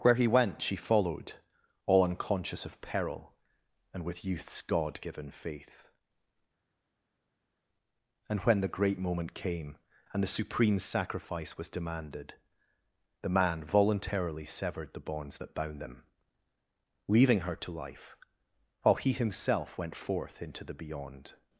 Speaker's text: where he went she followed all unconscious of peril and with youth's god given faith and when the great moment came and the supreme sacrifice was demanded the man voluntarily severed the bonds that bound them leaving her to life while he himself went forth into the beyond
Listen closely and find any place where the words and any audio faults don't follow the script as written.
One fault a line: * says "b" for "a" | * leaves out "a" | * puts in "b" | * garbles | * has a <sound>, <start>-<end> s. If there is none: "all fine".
all fine